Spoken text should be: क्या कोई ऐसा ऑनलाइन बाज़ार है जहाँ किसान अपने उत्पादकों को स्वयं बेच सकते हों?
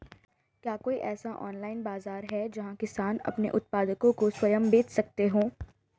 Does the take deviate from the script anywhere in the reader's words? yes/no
no